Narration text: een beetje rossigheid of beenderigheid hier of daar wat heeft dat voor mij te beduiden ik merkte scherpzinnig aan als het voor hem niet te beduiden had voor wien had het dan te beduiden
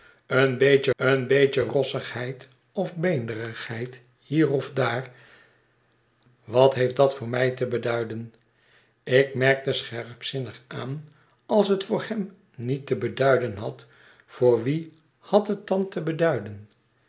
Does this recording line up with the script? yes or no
no